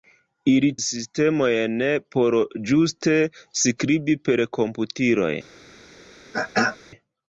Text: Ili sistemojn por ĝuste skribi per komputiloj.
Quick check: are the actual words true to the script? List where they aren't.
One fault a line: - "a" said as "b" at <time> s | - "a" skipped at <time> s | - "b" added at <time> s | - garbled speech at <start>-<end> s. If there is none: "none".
none